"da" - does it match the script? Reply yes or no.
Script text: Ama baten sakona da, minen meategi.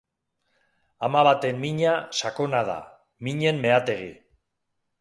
yes